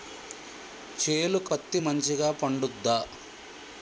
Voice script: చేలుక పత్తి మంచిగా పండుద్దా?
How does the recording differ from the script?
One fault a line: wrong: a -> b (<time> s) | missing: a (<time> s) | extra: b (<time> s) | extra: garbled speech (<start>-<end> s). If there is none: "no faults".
no faults